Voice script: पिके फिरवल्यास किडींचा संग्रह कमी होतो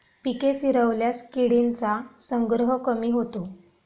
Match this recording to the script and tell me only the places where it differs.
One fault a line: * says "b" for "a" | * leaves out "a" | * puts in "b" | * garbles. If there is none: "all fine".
all fine